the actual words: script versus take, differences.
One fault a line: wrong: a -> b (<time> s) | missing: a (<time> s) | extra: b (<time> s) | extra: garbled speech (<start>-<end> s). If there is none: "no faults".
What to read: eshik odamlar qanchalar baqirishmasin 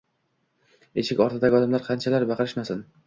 extra: ortidagi (1.2 s)